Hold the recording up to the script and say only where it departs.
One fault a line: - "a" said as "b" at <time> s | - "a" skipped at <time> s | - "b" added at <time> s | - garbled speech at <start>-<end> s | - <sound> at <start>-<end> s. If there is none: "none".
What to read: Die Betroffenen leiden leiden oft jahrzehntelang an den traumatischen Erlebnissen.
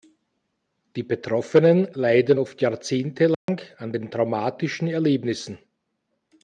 - "leiden" skipped at 2.4 s
- dropout at 3.3-3.5 s